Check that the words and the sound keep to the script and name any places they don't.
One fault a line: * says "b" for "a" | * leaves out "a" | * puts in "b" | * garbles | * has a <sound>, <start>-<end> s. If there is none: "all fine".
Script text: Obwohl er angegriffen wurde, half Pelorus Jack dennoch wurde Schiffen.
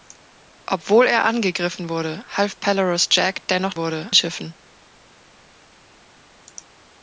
all fine